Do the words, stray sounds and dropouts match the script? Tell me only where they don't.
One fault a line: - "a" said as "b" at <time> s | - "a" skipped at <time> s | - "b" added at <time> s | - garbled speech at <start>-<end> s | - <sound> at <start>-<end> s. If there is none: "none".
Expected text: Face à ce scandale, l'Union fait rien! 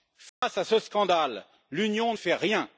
- dropout at 0.3-0.4 s